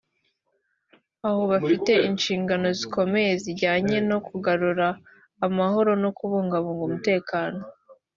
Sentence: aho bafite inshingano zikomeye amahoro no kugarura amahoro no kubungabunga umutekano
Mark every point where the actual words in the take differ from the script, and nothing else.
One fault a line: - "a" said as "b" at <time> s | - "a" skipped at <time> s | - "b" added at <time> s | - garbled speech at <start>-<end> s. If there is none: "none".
- "amahoro" said as "zijyanye" at 3.4 s